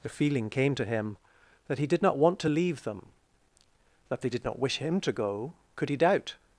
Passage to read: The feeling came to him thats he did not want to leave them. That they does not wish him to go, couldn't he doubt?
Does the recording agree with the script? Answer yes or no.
no